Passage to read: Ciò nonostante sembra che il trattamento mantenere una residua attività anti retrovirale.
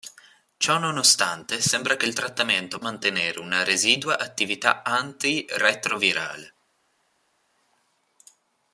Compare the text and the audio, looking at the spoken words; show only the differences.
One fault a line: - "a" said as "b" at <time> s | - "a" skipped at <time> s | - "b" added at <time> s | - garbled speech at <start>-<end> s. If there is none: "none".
none